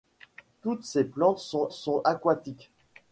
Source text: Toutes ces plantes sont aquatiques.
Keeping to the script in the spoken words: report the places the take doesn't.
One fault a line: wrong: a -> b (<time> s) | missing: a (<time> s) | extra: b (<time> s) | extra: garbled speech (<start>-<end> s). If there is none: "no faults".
extra: sont (1.7 s)